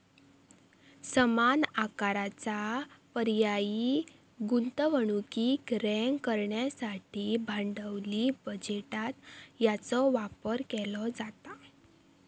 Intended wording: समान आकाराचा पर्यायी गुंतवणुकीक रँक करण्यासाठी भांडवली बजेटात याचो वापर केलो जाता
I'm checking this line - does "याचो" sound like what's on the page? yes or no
yes